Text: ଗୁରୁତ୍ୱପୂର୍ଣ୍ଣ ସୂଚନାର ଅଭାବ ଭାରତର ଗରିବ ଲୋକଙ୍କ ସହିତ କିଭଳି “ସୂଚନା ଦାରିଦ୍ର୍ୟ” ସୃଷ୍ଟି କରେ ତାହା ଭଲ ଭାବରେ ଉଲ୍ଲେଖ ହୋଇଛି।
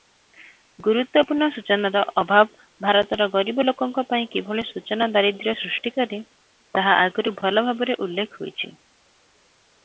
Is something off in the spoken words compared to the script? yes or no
yes